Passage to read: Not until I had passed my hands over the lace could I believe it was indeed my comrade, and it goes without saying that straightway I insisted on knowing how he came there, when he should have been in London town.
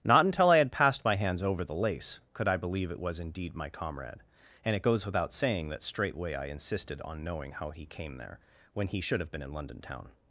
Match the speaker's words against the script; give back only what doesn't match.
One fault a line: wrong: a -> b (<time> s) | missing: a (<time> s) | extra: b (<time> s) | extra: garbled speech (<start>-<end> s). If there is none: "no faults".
no faults